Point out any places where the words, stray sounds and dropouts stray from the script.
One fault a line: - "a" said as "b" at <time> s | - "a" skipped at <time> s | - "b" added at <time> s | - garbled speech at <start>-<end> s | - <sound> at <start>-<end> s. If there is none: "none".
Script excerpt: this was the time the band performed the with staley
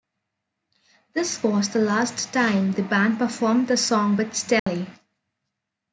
- "last" added at 1.8 s
- "song" added at 3.8 s
- dropout at 4.6-4.7 s